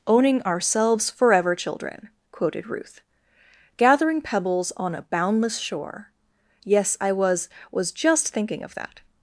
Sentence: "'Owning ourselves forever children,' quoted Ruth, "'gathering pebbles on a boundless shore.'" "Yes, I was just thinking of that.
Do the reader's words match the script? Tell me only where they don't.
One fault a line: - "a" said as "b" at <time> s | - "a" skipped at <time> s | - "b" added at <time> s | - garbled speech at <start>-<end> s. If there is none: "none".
- "was" added at 7.7 s